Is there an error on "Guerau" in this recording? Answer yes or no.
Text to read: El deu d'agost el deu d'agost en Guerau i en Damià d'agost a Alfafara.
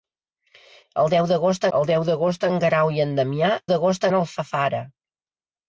no